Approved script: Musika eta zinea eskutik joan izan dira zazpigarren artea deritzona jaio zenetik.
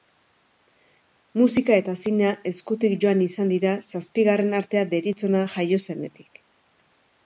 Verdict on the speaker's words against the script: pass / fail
pass